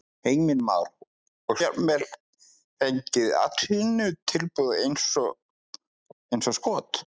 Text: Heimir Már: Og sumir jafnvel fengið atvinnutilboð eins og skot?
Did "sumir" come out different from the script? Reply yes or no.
yes